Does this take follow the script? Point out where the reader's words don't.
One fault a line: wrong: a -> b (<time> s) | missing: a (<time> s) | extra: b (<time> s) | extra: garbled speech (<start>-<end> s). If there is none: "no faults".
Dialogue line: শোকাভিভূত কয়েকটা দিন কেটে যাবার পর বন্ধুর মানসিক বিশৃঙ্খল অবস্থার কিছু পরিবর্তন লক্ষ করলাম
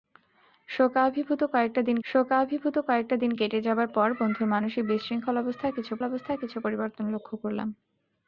extra: শোকাভিভূত কয়েকটা দিন (2.0 s)
extra: অবস্থার কিছু (6.0 s)